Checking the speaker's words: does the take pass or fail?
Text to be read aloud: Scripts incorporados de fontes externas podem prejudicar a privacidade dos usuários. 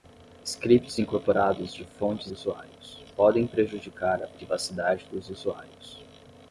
fail